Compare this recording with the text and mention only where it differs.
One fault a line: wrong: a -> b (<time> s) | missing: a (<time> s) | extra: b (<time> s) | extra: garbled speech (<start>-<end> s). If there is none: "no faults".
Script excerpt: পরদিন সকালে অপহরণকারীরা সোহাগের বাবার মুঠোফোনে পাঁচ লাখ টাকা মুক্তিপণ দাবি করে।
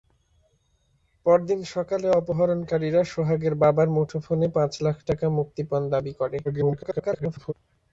extra: garbled speech (6.4-7.5 s)